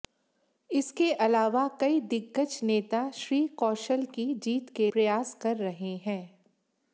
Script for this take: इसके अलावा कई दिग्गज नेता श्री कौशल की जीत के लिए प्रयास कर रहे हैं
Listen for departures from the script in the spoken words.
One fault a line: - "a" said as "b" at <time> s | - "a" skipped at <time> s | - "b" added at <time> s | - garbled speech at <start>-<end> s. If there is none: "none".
- "लिए" skipped at 4.9 s